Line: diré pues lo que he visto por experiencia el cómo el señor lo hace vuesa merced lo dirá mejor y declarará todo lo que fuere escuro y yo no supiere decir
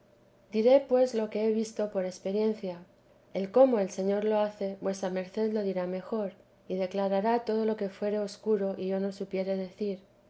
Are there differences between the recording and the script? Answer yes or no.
no